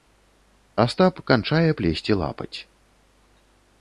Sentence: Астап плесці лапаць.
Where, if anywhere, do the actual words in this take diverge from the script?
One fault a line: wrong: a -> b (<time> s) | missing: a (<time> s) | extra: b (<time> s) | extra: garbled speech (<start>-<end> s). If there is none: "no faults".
extra: канчае (1.3 s)